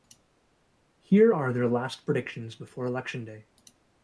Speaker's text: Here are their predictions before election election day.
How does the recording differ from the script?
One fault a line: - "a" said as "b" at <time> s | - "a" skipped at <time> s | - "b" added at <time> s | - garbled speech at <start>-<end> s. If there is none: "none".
- "last" added at 1.7 s
- "election" skipped at 3.3 s